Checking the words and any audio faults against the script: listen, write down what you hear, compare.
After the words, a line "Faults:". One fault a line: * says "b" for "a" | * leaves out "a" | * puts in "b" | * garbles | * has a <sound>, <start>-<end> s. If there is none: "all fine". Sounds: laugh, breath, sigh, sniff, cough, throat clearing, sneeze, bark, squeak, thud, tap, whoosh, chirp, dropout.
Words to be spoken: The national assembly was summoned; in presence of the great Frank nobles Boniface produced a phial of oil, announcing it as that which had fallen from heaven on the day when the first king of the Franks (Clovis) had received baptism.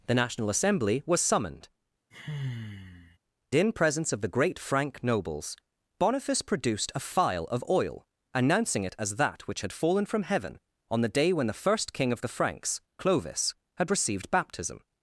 The national assembly was summoned; in presence of the great Frank nobles Boniface produced a phial of oil, announcing it as that which had fallen from heaven on the day when the first king of the Franks (Clovis) had received baptism.
Faults:
* has a sigh, 2.1-3.2 s